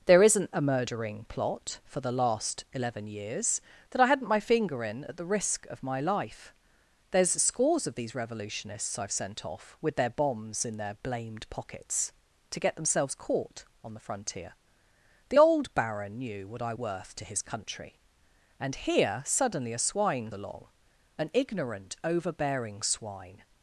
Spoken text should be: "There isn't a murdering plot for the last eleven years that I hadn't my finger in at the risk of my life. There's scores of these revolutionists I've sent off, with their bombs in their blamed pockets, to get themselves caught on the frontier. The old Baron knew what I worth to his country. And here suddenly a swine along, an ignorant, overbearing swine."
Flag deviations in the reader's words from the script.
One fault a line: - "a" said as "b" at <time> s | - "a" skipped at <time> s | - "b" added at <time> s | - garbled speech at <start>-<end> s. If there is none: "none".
none